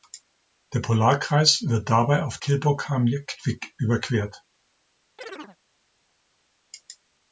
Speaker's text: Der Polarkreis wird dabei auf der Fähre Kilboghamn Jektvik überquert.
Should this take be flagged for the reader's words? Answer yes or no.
yes